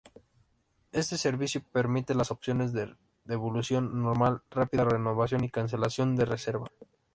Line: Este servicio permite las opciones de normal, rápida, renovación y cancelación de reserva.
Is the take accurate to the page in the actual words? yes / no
no